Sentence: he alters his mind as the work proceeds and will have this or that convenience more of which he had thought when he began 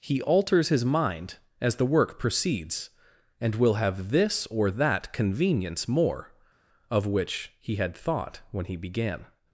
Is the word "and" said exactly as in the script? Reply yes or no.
yes